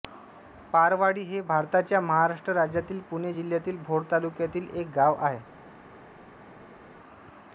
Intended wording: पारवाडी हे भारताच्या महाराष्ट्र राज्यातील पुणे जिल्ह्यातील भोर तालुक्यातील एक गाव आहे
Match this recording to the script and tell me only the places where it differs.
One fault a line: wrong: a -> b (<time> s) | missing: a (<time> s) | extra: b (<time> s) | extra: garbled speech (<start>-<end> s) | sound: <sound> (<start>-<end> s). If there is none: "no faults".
no faults